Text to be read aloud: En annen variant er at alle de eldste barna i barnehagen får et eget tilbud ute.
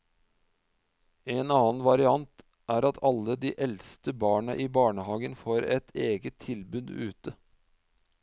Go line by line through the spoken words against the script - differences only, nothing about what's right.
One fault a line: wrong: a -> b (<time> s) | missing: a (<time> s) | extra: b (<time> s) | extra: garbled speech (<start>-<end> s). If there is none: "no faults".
no faults